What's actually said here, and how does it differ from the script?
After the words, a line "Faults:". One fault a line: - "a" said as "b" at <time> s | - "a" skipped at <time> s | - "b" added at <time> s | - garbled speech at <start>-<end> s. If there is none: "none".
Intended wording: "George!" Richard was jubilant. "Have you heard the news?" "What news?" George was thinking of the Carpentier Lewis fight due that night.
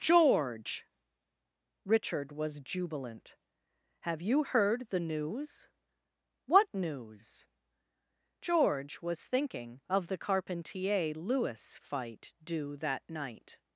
"George!" Richard was jubilant. "Have you heard the news?" "What news?" George was thinking of the Carpentier Lewis fight due that night.
Faults:
none